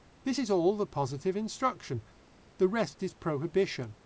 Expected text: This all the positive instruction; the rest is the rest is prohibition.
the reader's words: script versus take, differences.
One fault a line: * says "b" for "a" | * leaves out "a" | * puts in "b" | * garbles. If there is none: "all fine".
* puts in "is"
* leaves out "the rest is"